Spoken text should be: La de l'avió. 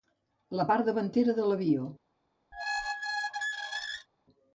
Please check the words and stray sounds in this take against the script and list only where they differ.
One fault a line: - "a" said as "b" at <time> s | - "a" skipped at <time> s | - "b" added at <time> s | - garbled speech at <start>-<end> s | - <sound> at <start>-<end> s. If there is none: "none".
- "part davantera" added at 0.7 s
- squeak at 2.5-4.1 s